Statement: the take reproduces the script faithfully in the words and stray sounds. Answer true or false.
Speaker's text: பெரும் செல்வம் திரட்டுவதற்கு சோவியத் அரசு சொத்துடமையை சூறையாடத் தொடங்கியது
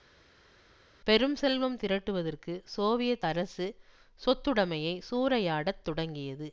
true